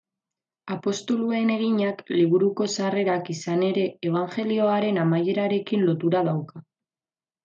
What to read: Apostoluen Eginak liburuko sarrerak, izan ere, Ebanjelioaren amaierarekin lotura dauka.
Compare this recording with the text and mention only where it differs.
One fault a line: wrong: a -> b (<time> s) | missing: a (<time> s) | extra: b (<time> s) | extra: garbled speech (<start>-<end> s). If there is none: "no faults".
no faults